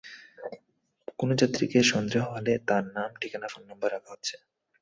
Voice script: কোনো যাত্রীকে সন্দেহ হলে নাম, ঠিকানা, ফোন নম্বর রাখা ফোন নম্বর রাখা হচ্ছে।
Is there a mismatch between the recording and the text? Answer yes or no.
yes